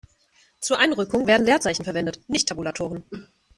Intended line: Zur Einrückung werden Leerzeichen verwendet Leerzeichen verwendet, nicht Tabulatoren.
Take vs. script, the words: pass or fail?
fail